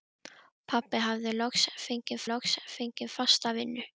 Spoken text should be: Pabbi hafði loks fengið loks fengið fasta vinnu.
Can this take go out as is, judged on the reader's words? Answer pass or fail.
pass